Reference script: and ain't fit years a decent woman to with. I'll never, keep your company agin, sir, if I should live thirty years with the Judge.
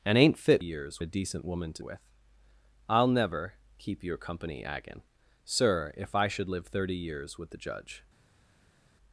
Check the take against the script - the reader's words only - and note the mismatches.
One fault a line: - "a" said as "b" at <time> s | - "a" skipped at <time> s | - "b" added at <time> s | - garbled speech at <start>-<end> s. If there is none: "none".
none